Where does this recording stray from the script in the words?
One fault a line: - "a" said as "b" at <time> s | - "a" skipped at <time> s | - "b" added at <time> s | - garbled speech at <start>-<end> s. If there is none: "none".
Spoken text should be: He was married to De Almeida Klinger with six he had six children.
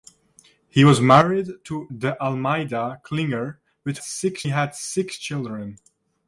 none